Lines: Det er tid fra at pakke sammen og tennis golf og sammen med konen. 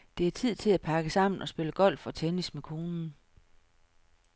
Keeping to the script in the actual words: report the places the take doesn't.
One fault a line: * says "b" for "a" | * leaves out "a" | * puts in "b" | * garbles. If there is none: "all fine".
* says "til" for "fra"
* says "spille" for "tennis"
* says "tennis" for "sammen"